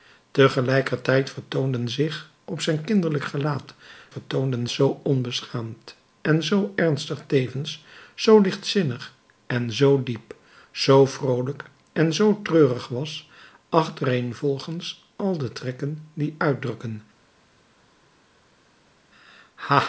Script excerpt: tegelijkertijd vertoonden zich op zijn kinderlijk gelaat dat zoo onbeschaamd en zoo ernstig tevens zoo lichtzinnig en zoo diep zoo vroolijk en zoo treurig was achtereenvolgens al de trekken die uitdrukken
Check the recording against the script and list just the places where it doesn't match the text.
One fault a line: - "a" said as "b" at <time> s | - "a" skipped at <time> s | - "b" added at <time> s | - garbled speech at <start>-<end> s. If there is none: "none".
- "dat" said as "vertoonden" at 4.1 s